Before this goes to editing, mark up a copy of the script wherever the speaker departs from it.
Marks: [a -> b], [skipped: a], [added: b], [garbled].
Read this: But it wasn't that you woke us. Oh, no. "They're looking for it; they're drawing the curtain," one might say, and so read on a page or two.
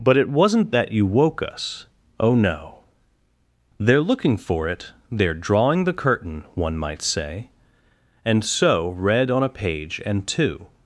But it wasn't that you woke us. Oh, no. "They're looking for it; they're drawing the curtain," one might say, and so read on a page [or -> and] two.